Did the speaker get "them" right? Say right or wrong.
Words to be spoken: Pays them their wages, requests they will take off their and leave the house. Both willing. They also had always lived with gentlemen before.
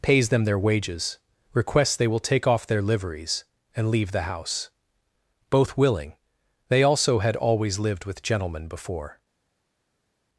right